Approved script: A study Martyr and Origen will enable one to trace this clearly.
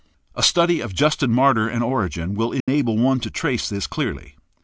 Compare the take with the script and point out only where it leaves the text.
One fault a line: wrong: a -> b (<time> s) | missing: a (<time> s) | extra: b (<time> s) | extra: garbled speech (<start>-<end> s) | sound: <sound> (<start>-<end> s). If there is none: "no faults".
extra: of Justin (0.8 s)
sound: dropout (2.6-2.7 s)